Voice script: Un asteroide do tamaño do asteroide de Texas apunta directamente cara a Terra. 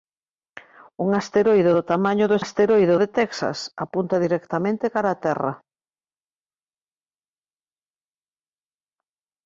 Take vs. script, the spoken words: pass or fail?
pass